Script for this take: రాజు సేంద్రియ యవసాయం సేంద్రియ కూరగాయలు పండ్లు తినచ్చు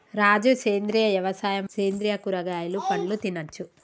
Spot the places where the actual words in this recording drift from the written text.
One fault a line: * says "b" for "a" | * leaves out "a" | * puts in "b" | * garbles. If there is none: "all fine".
all fine